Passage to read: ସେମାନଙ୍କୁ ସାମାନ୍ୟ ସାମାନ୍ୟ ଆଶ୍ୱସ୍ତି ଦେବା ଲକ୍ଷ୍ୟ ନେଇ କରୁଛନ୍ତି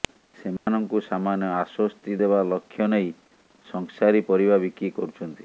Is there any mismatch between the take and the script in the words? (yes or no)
yes